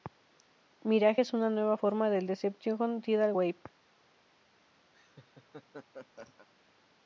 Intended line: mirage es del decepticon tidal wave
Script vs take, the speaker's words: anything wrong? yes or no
yes